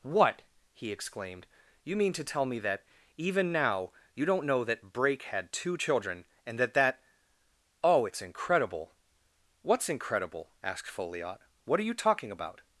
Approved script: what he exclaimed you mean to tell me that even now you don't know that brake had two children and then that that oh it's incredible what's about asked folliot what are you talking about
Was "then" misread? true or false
true